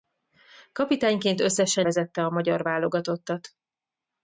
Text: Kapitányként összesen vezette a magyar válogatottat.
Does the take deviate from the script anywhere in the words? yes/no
no